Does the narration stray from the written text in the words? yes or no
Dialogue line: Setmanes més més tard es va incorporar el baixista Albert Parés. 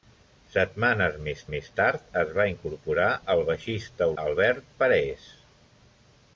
no